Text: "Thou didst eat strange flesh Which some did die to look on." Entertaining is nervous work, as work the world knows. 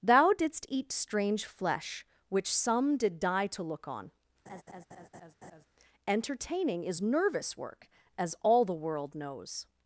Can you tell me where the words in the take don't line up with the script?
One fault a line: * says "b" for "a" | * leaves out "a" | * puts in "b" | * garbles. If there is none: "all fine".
* says "all" for "work"